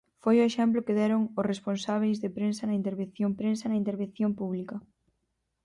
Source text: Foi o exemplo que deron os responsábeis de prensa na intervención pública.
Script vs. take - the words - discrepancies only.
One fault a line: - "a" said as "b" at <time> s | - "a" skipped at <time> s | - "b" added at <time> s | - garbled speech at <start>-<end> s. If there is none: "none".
- "prensa na intervención" added at 3.4 s